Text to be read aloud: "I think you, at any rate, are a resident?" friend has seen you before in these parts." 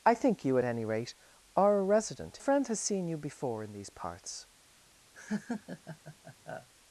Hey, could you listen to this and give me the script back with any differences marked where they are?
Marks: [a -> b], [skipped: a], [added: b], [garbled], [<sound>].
"I think you, at any rate, are a resident?" friend has seen you before in these parts." [laugh]